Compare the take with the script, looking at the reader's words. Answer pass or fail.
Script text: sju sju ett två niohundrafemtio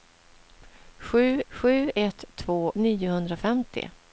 pass